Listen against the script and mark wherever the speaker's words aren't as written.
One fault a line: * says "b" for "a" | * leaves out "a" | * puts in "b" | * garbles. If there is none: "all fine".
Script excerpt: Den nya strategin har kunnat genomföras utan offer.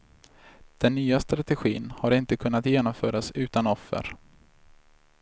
* puts in "inte"